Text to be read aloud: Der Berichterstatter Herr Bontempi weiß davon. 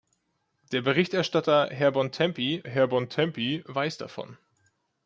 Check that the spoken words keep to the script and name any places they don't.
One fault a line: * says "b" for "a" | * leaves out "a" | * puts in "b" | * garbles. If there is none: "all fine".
* puts in "Herr Bontempi"